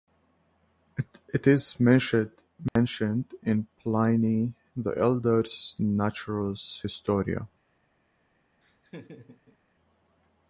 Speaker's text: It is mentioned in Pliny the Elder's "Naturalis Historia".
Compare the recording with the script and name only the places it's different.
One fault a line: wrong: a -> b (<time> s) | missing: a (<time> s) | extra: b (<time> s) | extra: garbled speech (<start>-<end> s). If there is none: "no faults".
no faults